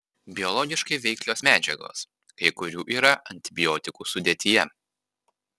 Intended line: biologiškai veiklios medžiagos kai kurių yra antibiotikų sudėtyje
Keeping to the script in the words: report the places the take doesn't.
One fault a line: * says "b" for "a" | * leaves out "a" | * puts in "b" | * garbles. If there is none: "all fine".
all fine